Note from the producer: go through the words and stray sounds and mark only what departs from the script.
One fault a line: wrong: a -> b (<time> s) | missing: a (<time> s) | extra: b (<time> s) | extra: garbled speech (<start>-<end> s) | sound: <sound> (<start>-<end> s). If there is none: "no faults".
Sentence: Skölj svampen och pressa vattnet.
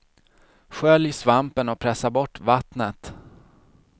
extra: bort (2.1 s)